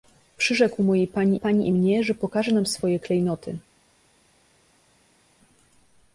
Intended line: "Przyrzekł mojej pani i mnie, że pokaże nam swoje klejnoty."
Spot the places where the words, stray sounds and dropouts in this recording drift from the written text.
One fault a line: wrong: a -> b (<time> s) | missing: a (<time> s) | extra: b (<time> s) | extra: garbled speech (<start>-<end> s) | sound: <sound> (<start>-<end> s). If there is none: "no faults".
extra: pani (1.4 s)